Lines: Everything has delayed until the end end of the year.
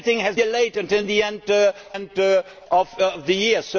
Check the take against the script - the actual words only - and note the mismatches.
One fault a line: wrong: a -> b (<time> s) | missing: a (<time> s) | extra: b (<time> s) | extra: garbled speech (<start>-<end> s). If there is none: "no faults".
no faults